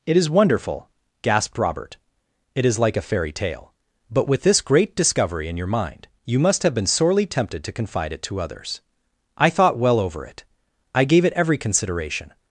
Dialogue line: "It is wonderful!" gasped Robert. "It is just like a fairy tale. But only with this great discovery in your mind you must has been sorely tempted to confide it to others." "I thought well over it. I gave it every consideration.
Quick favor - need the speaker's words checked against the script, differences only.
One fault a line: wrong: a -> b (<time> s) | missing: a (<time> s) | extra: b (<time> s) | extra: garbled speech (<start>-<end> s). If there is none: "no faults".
missing: just (2.8 s)
missing: only (4.3 s)
wrong: has -> have (6.6 s)